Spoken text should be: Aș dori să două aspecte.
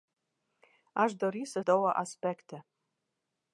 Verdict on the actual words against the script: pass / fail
pass